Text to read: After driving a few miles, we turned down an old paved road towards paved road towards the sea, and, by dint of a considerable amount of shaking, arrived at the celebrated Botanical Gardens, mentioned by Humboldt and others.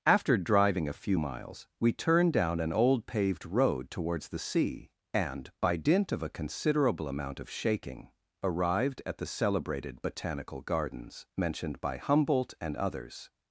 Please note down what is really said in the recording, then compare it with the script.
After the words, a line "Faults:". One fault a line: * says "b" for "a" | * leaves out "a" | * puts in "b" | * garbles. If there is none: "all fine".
After driving a few miles, we turned down an old paved road towards the sea, and, by dint of a considerable amount of shaking, arrived at the celebrated Botanical Gardens, mentioned by Humboldt and others.
Faults:
* leaves out "paved road towards"